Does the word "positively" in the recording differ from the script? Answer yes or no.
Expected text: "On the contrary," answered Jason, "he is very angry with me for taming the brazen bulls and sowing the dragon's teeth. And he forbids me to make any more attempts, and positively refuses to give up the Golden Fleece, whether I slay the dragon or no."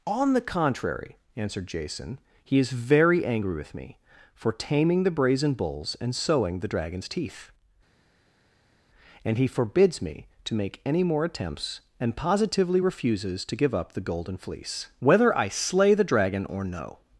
no